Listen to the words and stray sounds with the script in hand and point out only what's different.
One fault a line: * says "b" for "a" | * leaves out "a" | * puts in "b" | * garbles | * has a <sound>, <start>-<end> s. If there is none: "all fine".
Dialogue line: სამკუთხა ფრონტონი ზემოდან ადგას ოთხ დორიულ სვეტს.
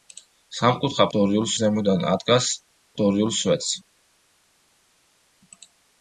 * says "დორიულ" for "ფრონტონი"
* leaves out "ოთხ"